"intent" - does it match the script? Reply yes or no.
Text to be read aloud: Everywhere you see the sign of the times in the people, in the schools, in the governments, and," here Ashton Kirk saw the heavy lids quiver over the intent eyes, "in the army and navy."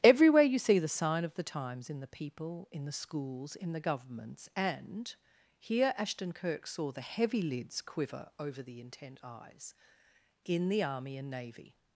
yes